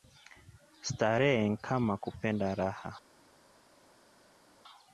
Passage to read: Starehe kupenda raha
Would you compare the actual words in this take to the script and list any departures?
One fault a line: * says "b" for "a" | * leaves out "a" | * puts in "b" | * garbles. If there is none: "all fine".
* puts in "nkama"